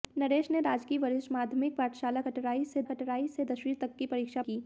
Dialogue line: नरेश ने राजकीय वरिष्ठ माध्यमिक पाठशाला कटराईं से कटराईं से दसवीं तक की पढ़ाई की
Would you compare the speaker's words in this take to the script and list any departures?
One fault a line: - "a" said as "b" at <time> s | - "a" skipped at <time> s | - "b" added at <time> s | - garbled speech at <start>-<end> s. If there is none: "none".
none